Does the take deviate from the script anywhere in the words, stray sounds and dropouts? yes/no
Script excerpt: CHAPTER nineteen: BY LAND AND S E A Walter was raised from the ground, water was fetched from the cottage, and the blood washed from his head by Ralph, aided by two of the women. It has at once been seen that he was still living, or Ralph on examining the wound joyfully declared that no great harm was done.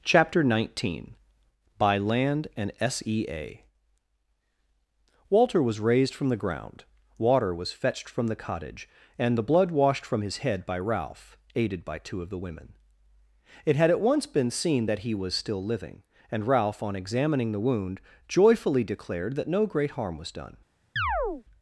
yes